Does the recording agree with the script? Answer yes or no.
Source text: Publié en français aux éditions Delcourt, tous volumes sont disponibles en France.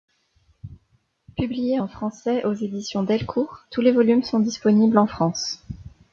no